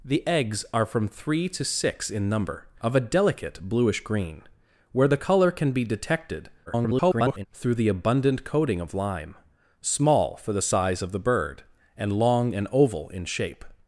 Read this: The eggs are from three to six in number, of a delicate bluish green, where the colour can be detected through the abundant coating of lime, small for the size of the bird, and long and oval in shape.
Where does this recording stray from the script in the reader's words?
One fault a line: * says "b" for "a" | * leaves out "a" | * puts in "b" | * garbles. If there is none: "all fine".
* garbles